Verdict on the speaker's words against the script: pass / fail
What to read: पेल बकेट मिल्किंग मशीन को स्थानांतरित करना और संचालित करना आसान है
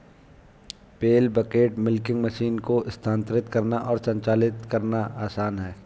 pass